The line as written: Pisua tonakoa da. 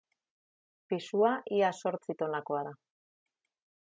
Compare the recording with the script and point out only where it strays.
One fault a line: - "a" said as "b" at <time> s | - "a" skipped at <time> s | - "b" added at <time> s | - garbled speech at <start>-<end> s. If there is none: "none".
- "ia zortzi" added at 1.6 s